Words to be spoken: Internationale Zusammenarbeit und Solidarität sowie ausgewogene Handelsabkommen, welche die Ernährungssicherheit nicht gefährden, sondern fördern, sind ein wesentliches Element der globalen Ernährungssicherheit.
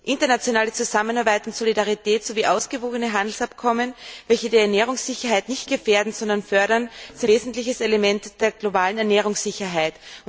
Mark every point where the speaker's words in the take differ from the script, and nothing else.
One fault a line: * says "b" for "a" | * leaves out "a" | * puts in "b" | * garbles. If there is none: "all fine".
* leaves out "ein"